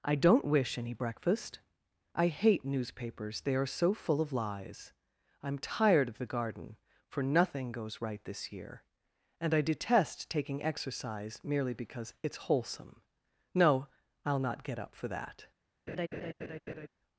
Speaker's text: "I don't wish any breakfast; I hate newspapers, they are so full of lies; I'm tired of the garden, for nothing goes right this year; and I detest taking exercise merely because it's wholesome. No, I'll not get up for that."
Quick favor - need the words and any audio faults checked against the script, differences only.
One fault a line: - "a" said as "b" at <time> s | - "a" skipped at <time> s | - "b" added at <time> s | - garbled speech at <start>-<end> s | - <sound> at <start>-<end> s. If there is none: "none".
- laugh at 15.9-16.9 s